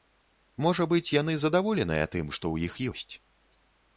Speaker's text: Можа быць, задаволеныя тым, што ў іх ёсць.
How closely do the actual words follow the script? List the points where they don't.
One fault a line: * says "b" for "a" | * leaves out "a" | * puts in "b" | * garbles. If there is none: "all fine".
* puts in "яны"